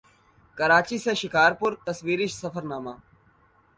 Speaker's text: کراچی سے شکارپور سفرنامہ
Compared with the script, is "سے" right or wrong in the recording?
right